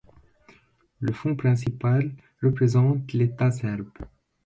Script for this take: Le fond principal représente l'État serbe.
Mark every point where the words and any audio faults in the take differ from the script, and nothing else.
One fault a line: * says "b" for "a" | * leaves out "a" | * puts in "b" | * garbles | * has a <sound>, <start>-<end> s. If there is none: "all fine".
all fine